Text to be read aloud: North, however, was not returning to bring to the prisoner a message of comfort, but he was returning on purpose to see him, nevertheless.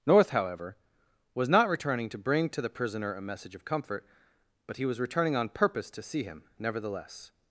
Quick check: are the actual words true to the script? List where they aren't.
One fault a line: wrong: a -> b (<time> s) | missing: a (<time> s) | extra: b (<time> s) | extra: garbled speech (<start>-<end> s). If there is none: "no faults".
no faults